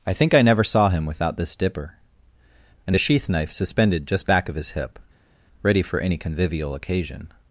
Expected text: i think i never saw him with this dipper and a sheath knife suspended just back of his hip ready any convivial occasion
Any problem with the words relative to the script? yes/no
yes